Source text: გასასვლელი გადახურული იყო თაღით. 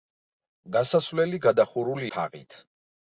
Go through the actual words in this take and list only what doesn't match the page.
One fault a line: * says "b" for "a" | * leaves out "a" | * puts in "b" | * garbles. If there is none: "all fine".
* leaves out "იყო"